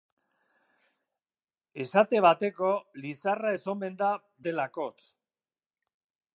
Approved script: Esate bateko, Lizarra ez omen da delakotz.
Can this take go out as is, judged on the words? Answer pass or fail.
pass